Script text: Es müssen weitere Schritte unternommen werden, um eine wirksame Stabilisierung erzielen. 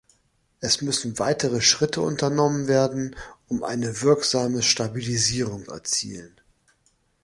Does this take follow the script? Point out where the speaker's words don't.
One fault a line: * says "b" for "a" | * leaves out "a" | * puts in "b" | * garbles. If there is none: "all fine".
all fine